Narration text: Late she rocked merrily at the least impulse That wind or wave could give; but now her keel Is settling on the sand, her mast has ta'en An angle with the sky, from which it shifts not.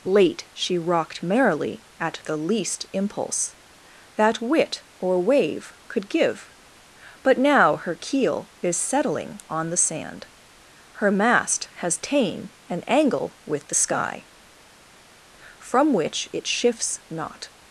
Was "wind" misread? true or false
true